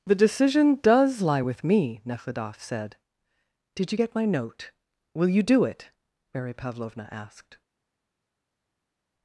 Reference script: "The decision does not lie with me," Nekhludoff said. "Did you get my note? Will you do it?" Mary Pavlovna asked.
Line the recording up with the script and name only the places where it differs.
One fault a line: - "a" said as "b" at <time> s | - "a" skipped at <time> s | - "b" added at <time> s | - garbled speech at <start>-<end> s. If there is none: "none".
- "not" skipped at 1.2 s